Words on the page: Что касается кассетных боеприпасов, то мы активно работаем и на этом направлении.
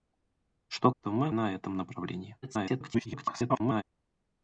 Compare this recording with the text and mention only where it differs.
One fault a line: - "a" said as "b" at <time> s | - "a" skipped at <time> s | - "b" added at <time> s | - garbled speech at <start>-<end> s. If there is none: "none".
- "касается кассетных боеприпасов" skipped at 0.9 s
- "активно работаем и" skipped at 1.3 s
- garbled speech at 2.4-3.8 s